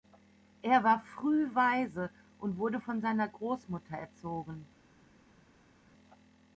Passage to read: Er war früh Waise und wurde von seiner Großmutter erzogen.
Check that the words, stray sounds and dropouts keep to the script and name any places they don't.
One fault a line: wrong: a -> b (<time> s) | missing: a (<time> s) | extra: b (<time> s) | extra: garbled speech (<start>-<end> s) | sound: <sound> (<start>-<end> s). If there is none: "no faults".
no faults